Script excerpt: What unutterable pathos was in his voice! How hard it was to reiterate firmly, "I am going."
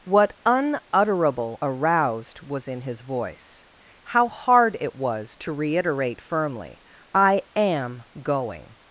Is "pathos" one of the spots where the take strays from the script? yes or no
yes